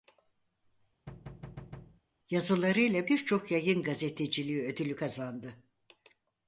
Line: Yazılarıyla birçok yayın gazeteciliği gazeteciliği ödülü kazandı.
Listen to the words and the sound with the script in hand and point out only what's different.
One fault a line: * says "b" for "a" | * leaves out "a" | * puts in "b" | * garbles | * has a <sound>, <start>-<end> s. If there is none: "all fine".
* has a thud, 1.1-2.0 s
* leaves out "gazeteciliği"